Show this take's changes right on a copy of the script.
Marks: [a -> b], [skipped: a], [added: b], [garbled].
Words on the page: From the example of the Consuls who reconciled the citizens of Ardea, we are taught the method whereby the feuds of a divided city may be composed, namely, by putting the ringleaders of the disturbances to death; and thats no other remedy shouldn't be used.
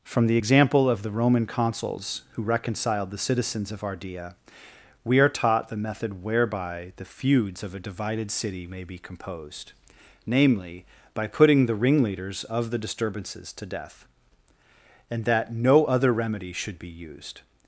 From the example of the [added: Roman] Consuls who reconciled the citizens of Ardea, we are taught the method whereby the feuds of a divided city may be composed, namely, by putting the ringleaders of the disturbances to death; and [thats -> that] no other remedy [shouldn't -> should] be used.